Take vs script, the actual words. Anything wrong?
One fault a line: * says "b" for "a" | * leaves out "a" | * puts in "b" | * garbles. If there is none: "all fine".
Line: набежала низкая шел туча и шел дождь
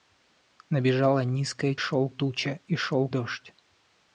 all fine